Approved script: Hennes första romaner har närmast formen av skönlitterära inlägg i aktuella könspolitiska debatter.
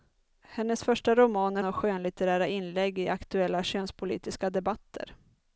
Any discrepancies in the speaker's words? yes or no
yes